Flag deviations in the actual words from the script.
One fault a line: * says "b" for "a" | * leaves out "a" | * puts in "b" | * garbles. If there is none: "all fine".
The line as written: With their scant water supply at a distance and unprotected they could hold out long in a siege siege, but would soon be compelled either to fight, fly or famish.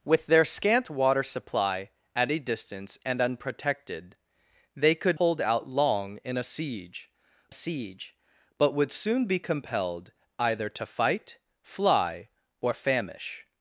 all fine